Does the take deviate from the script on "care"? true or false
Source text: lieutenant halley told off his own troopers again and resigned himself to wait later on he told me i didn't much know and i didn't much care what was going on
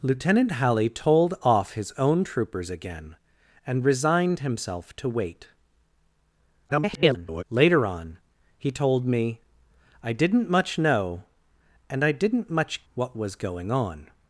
true